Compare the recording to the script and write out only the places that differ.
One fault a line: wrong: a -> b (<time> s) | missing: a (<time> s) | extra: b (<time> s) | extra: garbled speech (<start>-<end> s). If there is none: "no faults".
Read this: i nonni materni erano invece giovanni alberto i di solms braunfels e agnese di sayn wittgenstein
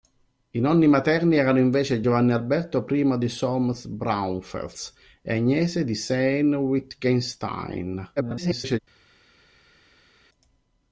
extra: garbled speech (8.2-8.8 s)